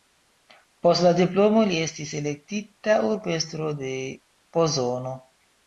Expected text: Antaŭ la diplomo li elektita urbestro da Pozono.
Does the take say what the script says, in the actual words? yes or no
no